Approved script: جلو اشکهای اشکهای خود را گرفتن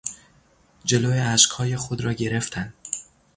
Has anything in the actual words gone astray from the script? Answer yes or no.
yes